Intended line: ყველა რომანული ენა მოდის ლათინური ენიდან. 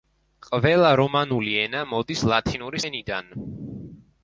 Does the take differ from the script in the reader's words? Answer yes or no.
no